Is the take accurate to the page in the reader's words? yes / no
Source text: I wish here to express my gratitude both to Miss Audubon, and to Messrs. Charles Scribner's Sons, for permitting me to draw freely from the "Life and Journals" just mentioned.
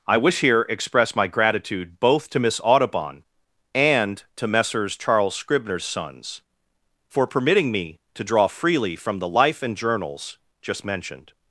no